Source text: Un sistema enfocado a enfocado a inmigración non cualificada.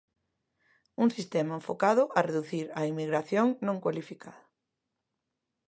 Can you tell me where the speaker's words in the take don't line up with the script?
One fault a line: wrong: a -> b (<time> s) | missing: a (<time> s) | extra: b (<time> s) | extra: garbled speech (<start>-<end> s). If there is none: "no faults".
wrong: enfocado -> reducir (2.3 s)